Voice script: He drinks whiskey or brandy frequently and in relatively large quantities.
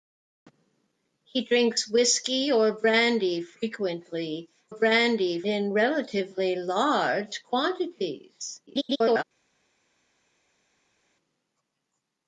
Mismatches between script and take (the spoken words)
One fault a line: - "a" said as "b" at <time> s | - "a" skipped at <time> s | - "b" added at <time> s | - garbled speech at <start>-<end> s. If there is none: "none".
- "and" said as "brandy" at 4.7 s
- garbled speech at 8.7-9.2 s